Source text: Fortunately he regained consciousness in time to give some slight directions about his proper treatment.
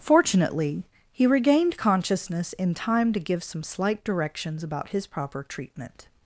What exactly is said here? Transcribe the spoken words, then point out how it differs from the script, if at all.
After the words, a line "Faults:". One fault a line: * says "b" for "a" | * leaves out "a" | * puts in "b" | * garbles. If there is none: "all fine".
Fortunately he regained consciousness in time to give some slight directions about his proper treatment.
Faults:
all fine